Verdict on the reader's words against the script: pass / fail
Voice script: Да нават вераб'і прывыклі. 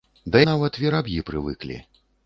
pass